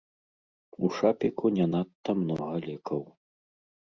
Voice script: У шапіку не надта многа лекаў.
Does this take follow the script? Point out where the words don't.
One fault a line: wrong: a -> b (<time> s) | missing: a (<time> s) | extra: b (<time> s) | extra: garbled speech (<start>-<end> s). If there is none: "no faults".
no faults